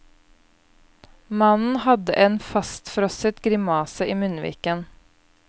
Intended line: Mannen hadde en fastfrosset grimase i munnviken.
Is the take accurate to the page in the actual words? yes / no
yes